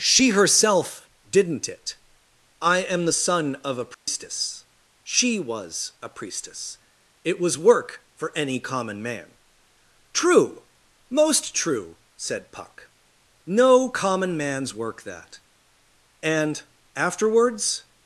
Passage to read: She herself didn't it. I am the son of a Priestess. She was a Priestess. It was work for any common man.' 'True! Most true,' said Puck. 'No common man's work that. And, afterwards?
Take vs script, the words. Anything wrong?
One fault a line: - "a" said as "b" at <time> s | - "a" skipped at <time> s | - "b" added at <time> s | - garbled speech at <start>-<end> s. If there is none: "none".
none